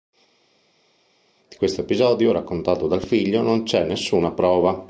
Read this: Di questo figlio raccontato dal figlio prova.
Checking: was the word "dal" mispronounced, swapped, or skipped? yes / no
no